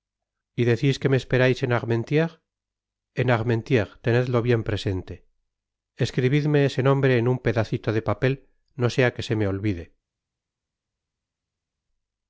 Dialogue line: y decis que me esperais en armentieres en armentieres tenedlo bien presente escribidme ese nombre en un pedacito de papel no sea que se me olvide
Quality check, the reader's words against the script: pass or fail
pass